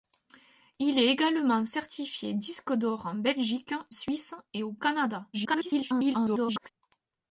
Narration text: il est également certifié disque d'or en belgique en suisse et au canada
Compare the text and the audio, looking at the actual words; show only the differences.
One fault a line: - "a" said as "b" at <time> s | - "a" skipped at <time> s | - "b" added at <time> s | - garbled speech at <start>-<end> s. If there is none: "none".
- "en" skipped at 3.8 s
- garbled speech at 5.3-6.7 s